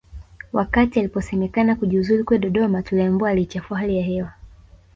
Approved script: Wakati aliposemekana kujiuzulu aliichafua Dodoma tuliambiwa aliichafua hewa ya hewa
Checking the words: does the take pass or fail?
fail